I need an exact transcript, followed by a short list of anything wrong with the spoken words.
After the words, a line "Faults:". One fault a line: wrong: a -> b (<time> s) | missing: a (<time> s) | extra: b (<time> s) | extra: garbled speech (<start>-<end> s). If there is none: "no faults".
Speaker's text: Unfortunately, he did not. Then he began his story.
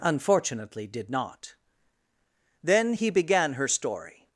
Unfortunately, did not. Then he began her story.
Faults:
missing: he (0.9 s)
wrong: his -> her (3.5 s)